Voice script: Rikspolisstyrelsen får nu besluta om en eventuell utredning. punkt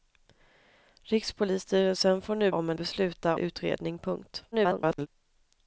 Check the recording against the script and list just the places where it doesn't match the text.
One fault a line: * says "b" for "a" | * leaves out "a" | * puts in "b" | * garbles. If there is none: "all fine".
* leaves out "besluta"
* says "besluta" for "eventuell"
* garbles